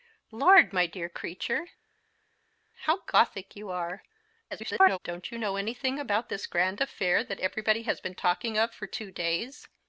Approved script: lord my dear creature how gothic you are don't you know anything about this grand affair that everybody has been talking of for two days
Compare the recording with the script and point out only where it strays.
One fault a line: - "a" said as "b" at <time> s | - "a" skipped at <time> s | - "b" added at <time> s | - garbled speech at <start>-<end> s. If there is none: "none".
- garbled speech at 4.5-5.0 s